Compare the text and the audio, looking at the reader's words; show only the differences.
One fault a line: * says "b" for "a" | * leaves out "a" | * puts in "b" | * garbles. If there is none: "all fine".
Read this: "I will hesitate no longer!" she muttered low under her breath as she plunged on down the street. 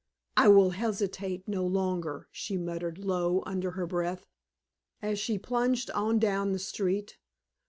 all fine